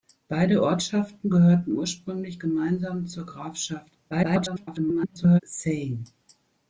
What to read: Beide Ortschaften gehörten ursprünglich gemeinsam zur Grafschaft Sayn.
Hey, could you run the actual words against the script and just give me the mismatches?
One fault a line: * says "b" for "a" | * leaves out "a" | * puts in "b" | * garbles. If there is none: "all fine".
* garbles